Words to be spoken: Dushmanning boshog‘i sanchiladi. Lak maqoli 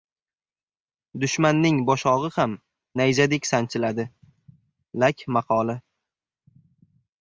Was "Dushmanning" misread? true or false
false